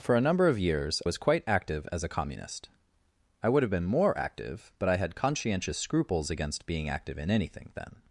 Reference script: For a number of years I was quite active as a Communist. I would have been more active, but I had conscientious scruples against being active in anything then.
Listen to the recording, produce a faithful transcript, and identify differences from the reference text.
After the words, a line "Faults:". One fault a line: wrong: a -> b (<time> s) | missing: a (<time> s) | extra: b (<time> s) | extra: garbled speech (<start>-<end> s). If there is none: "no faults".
For a number of years was quite active as a Communist. I would have been more active, but I had conscientious scruples against being active in anything then.
Faults:
missing: I (1.0 s)